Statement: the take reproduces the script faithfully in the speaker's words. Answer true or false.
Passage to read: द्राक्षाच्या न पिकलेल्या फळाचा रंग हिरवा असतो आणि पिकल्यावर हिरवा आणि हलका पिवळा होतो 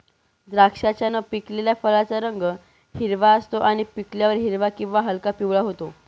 false